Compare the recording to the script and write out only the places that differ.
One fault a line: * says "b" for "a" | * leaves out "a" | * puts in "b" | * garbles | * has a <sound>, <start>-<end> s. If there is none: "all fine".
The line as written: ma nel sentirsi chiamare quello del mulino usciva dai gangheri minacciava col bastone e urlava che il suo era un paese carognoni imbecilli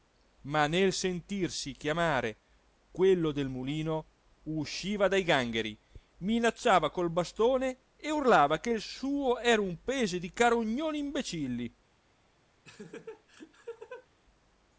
* puts in "di"
* has a laugh, 12.6-14.1 s